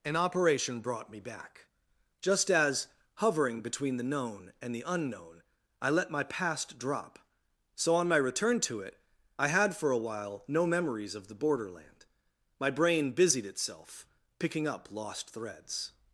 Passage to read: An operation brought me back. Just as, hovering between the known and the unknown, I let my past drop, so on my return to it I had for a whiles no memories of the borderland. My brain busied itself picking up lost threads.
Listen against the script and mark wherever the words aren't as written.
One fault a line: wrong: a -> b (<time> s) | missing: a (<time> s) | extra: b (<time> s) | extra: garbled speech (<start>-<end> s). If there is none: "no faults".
wrong: whiles -> while (10.0 s)